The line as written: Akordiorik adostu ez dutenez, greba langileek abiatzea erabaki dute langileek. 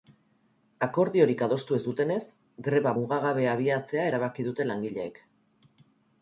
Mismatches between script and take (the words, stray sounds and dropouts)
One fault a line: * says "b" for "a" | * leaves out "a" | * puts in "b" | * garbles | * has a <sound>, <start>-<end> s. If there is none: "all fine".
* says "mugagabea" for "langileek"